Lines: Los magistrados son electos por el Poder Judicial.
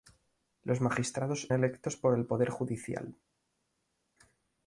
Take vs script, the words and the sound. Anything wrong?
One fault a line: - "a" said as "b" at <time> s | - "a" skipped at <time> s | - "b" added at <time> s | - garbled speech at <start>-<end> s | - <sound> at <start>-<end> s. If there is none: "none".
- "son" skipped at 1.5 s